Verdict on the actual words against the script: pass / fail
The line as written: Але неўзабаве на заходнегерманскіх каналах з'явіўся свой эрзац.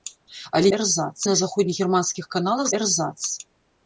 fail